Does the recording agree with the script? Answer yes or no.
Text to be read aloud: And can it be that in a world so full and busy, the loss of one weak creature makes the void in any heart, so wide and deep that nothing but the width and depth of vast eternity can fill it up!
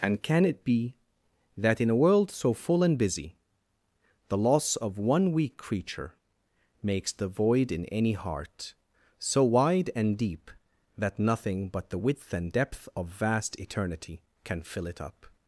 yes